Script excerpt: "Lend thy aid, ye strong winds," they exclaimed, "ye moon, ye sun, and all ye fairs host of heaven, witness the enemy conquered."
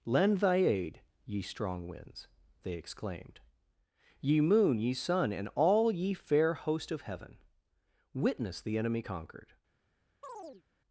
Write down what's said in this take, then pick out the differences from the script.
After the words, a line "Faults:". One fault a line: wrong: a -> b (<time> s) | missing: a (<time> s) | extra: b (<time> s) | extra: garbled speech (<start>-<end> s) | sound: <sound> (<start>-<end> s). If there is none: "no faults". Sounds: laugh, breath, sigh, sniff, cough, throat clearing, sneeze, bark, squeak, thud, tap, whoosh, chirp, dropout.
"Lend thy aid, ye strong winds," they exclaimed, "ye moon, ye sun, and all ye fair host of heaven, witness the enemy conquered."
Faults:
wrong: fairs -> fair (6.2 s)
sound: chirp (10.2-10.6 s)